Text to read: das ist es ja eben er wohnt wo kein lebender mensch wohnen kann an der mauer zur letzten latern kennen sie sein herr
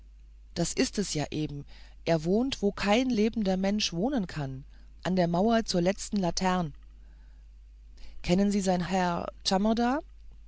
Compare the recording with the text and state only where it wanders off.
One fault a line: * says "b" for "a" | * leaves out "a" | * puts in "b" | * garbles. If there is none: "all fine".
all fine